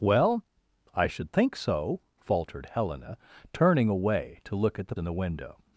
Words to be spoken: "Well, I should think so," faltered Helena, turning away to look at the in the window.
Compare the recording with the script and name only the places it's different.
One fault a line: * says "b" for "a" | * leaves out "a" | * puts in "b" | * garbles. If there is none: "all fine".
all fine